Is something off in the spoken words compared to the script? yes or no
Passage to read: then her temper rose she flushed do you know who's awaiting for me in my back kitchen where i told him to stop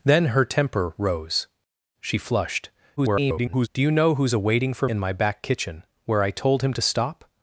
yes